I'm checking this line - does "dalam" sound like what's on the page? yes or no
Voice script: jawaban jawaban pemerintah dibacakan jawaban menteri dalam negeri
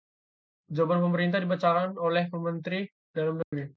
yes